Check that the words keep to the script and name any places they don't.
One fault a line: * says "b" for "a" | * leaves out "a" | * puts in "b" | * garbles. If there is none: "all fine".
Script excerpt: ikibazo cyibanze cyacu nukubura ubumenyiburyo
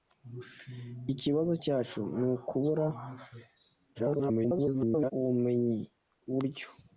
* leaves out "cyibanze"
* garbles